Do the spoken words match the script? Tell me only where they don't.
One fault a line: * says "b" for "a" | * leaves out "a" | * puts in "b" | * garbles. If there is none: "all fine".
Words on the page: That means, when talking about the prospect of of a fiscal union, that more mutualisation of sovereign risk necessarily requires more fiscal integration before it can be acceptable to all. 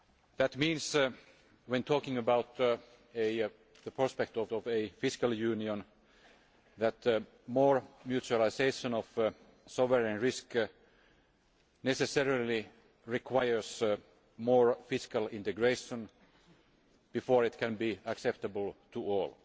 all fine